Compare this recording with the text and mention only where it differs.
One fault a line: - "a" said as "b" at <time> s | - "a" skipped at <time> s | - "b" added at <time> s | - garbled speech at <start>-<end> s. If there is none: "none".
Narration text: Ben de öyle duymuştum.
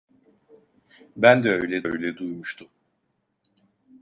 - "öyle" added at 1.8 s